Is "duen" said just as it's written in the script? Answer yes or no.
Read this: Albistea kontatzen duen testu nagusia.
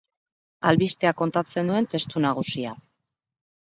yes